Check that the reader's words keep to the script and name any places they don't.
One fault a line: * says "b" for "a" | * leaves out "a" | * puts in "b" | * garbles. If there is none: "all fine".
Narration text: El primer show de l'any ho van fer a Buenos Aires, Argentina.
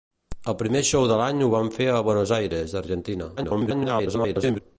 * garbles